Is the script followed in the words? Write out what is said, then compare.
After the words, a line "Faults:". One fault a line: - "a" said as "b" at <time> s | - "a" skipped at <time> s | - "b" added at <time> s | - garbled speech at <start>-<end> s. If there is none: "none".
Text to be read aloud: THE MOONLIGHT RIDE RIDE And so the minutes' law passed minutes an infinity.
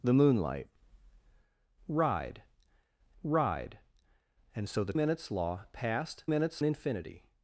THE MOONLIGHT RIDE RIDE And so the minutes' law passed minutes an infinity.
Faults:
none